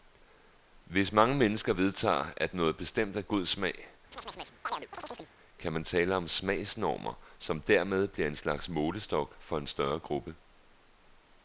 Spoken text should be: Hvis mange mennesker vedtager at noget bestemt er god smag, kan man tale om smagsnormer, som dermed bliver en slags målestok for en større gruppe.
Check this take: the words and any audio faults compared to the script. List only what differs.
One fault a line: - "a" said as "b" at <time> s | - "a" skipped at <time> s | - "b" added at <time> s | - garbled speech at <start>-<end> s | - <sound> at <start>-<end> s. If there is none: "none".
- chirp at 4.1-5.3 s